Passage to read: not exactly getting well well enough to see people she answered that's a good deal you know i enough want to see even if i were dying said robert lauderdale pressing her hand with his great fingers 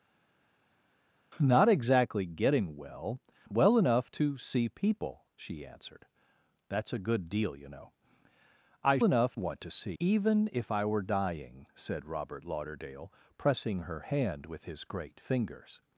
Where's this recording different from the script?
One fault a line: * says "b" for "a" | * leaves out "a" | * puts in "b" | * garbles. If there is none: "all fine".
all fine